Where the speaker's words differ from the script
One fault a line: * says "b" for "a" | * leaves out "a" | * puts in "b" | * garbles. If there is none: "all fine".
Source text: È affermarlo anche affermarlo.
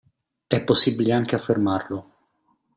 * says "possibile" for "affermarlo"